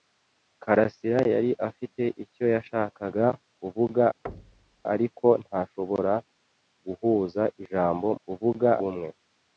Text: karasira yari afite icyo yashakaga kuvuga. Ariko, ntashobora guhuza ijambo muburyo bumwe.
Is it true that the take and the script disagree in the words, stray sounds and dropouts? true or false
true